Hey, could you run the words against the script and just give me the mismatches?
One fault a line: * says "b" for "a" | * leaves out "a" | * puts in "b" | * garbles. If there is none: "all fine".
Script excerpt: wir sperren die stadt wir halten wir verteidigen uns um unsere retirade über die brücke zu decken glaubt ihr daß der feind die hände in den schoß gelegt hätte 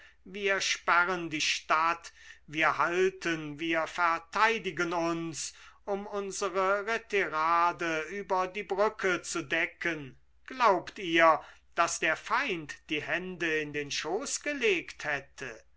all fine